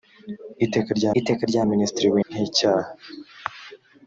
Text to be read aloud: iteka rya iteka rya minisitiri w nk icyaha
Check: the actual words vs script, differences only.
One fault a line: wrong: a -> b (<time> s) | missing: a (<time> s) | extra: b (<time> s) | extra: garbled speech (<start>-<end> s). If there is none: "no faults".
no faults